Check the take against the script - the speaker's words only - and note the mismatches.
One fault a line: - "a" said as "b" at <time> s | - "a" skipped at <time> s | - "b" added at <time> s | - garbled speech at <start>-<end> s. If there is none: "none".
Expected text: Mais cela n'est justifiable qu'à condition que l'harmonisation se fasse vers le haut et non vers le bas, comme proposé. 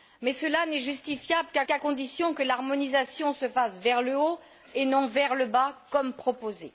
- "qu'à" added at 1.7 s